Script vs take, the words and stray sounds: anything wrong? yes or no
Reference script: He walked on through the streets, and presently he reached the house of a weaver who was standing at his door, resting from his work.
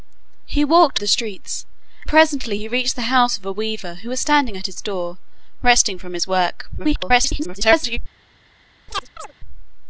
yes